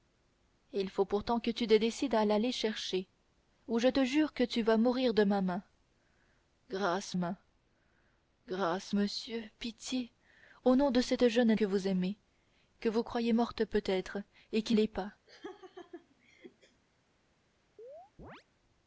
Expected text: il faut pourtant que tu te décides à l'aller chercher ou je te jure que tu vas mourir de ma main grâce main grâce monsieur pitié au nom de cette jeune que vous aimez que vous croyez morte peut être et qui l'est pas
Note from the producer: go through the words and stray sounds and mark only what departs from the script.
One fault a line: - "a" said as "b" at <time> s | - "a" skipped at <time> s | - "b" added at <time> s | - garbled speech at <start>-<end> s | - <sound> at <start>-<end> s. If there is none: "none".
- laugh at 15.3-16.8 s
- chirp at 17.8-18.4 s